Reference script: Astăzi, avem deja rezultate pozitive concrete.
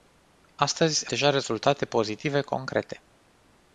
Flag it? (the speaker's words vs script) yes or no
yes